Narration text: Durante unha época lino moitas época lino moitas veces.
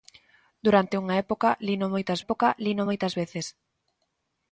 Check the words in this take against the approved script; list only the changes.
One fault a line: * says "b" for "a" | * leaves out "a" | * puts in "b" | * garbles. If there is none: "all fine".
all fine